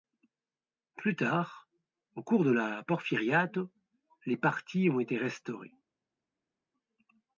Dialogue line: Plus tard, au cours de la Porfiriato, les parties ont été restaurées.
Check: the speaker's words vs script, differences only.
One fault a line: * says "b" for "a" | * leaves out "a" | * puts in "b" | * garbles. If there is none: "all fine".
all fine